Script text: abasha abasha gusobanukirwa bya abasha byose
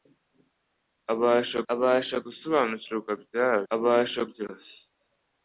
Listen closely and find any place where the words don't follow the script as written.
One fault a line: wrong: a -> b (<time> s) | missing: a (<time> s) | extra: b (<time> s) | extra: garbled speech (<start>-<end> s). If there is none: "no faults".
no faults